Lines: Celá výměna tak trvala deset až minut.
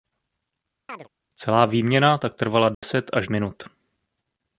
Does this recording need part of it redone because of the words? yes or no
no